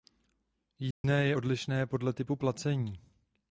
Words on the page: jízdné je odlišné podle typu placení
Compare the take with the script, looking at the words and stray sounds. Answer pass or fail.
fail